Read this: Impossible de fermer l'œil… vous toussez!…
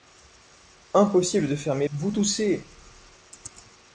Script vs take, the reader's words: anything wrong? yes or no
yes